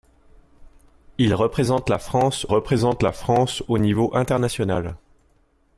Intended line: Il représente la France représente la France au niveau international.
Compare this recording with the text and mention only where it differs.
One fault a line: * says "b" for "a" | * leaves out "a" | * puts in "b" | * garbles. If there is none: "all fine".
all fine